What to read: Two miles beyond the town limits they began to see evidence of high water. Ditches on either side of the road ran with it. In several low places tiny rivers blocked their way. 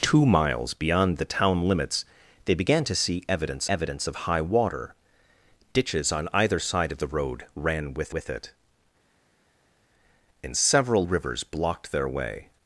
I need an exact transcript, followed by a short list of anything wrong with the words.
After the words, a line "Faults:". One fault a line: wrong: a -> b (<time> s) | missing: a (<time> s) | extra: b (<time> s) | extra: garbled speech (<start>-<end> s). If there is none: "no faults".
Two miles beyond the town limits they began to see evidence evidence of high water. Ditches on either side of the road ran with with it. In several rivers blocked their way.
Faults:
extra: evidence (3.7 s)
extra: with (8.1 s)
missing: low places tiny (11.0 s)